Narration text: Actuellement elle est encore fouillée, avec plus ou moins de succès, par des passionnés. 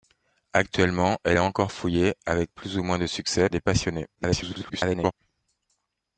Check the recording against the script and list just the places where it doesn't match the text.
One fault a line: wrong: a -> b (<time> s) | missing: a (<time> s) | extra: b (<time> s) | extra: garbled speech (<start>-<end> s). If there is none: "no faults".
missing: par (3.5 s)
extra: garbled speech (4.1-5.1 s)